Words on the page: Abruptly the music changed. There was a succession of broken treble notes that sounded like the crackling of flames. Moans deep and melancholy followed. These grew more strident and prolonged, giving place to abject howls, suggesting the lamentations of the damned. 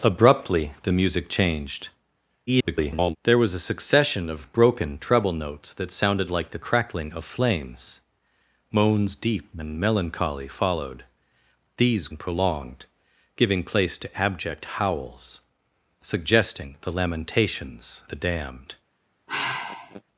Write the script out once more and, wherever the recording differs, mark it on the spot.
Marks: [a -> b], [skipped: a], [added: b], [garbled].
Abruptly the music changed. [garbled] There was a succession of broken treble notes that sounded like the crackling of flames. Moans deep and melancholy followed. These [skipped: grew more strident] and prolonged, giving place to abject howls, suggesting the lamentations [skipped: of] the damned.